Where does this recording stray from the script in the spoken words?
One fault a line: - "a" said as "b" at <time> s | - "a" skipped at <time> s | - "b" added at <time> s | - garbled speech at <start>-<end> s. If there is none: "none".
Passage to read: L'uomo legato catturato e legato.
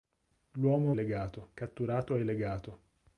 none